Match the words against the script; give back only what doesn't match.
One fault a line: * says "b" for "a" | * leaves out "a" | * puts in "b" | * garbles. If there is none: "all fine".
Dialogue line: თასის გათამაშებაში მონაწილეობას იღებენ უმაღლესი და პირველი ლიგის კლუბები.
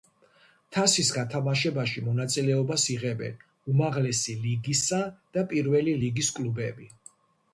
* puts in "ლიგისა"